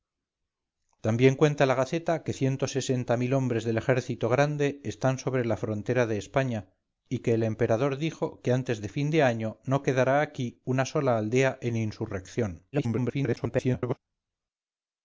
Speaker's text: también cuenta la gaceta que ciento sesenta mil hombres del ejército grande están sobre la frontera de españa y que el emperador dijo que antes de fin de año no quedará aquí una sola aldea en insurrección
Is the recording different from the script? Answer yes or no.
yes